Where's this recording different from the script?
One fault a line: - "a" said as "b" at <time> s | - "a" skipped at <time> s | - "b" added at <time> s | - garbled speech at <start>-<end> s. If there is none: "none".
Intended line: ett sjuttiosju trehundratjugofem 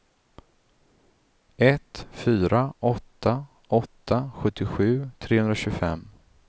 - "fyra åtta åtta" added at 2.1 s